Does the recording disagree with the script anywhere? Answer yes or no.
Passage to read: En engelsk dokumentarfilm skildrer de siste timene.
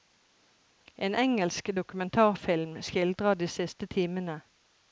no